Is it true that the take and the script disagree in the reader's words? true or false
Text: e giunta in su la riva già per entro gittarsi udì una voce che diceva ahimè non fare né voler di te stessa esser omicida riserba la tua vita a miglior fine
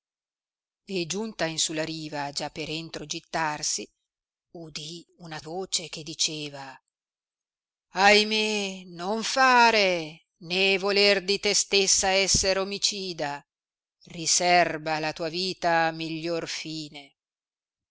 false